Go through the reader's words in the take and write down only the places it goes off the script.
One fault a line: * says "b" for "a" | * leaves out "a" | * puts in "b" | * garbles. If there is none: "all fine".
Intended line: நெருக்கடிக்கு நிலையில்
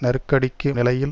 all fine